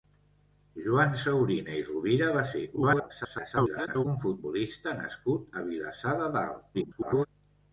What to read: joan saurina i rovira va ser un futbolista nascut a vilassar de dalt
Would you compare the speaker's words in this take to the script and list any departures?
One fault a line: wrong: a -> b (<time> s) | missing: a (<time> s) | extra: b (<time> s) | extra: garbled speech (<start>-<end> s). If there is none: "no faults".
extra: garbled speech (2.8-4.1 s)
extra: garbled speech (6.7-7.3 s)